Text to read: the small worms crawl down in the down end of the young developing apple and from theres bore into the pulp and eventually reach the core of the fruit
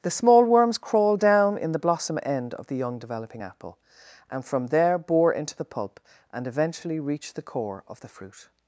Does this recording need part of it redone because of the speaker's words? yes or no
yes